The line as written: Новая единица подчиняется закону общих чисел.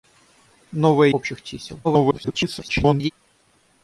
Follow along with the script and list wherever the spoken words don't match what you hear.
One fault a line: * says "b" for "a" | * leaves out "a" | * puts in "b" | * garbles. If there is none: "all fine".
* leaves out "единица подчиняется закону"
* garbles